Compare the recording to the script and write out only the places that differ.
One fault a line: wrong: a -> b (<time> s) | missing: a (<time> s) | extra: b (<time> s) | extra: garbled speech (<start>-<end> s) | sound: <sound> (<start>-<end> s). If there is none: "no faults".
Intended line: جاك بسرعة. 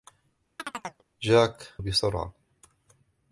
sound: chirp (0.6-1.0 s)